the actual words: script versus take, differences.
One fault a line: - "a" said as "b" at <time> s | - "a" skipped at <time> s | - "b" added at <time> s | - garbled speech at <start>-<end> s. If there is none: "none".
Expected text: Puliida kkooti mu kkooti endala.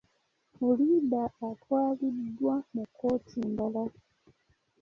- "kkooti" said as "atwaliddwa" at 1.5 s